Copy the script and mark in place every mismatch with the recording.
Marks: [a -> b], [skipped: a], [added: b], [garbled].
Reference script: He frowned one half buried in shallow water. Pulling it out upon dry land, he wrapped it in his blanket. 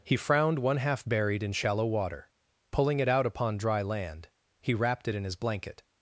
He frowned one half buried in shallow water. Pulling it out upon dry land, he wrapped it in his blanket.